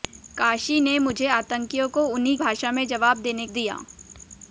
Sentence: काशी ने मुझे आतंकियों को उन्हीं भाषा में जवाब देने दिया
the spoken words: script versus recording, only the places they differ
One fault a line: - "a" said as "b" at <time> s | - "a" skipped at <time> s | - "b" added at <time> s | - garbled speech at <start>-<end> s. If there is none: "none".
none